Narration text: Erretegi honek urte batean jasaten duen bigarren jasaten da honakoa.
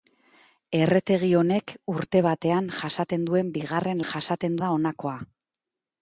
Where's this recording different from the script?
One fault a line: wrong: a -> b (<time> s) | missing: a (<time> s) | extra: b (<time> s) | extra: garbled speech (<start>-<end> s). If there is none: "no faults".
no faults